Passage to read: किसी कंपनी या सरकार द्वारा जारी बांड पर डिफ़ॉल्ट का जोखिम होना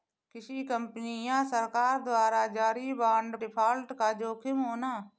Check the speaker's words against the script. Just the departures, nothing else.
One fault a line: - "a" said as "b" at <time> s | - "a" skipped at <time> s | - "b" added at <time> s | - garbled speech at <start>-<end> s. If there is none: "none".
- "पर" skipped at 3.4 s